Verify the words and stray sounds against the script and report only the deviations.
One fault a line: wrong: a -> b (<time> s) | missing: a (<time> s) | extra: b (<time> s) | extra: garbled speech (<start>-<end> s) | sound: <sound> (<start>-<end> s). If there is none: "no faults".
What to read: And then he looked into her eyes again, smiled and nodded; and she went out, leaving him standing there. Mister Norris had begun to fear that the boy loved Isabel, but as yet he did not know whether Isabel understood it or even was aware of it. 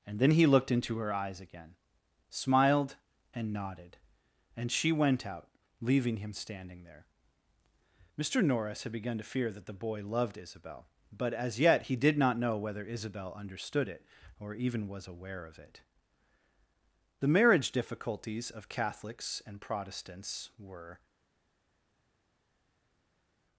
extra: The marriage difficulties of Catholics and Protestants were (17.2 s)